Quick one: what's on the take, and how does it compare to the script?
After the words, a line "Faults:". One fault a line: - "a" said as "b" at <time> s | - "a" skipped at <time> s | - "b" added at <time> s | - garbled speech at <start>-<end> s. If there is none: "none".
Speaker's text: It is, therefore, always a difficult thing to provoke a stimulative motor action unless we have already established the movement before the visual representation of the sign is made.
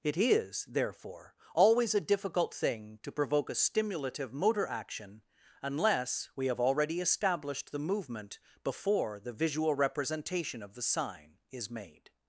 It is, therefore, always a difficult thing to provoke a stimulative motor action unless we have already established the movement before the visual representation of the sign is made.
Faults:
none